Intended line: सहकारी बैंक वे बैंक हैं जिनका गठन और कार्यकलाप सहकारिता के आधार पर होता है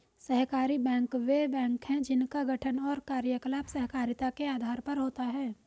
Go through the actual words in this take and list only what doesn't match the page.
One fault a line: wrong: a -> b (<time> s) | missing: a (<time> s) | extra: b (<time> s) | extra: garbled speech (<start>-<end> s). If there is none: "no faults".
no faults